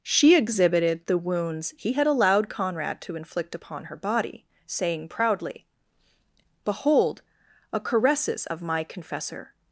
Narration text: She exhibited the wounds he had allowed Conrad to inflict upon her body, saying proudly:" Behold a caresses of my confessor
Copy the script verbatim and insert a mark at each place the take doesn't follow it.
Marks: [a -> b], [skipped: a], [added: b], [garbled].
She exhibited the wounds he had allowed Conrad to inflict upon her body, saying proudly:" Behold a caresses of my confessor